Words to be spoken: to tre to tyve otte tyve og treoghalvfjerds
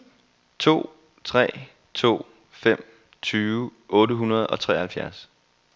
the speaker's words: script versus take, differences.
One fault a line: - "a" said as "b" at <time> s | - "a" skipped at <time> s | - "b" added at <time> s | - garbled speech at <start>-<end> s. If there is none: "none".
- "fem" added at 2.5 s
- "tyve" said as "hundrede" at 4.1 s